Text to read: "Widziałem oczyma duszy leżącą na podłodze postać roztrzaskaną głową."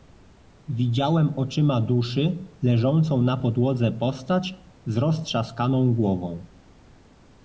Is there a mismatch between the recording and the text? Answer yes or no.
yes